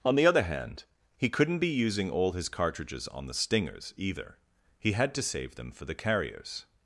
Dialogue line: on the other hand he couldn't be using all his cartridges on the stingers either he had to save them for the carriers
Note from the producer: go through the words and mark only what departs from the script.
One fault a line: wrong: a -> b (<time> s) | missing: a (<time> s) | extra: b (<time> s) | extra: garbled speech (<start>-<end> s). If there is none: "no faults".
no faults